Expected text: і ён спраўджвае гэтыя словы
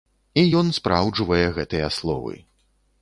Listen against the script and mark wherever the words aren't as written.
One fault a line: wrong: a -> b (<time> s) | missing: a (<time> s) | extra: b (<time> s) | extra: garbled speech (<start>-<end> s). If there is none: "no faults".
no faults